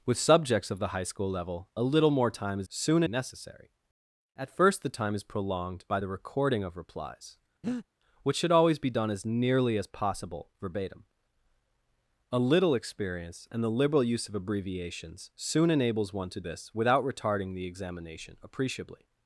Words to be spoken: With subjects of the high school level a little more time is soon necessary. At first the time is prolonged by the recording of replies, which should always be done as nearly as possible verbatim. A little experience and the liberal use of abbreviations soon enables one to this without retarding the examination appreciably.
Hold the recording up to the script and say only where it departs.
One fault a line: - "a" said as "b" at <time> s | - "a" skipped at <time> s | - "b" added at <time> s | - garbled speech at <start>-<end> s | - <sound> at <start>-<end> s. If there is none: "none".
- breath at 7.6-7.9 s